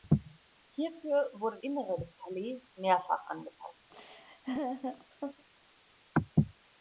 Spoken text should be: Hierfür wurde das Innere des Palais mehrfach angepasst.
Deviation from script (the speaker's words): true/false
true